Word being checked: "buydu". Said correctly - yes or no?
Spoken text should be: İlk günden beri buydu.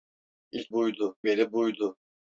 yes